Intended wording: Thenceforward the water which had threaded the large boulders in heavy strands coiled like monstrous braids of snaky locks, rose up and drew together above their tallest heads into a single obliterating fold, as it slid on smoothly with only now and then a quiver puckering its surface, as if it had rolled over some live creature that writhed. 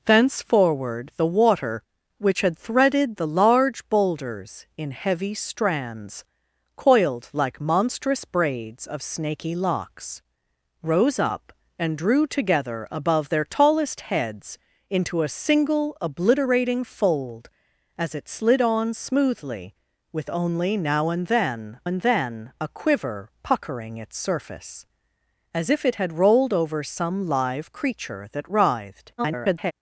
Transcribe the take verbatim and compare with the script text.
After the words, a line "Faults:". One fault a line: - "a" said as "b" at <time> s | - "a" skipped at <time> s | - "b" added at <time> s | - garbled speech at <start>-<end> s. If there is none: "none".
Thenceforward the water which had threaded the large boulders in heavy strands coiled like monstrous braids of snaky locks, rose up and drew together above their tallest heads into a single obliterating fold, as it slid on smoothly with only now and then and then a quiver puckering its surface, as if it had rolled over some live creature that writhed. [garbled]
Faults:
- "and then" added at 21.8 s
- garbled speech at 29.2-29.7 s